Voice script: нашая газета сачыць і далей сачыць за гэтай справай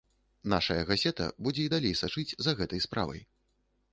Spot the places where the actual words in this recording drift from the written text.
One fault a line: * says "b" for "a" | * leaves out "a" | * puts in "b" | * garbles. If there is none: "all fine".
* says "будзе" for "сачыць"